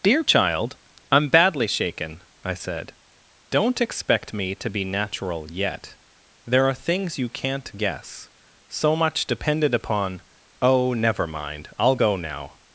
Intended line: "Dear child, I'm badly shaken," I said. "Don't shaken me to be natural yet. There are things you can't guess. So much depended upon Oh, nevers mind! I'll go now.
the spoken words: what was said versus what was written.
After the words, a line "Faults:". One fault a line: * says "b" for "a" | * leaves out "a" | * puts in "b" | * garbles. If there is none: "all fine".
"Dear child, I'm badly shaken," I said. "Don't expect me to be natural yet. There are things you can't guess. So much depended upon Oh, never mind! I'll go now.
Faults:
* says "expect" for "shaken"
* says "never" for "nevers"